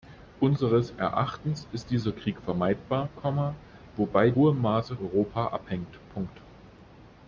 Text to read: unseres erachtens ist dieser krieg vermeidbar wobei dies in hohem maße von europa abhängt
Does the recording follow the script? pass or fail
fail